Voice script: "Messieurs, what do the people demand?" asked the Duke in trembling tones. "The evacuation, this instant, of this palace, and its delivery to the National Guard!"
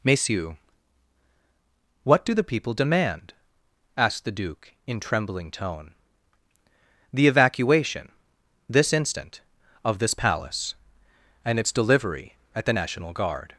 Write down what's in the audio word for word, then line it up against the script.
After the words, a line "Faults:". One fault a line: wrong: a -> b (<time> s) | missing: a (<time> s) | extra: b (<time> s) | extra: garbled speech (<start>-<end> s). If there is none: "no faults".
"Messieurs, what do the people demand?" asked the Duke in trembling tone. "The evacuation, this instant, of this palace, and its delivery at the National Guard!"
Faults:
wrong: tones -> tone (5.5 s)
wrong: to -> at (12.6 s)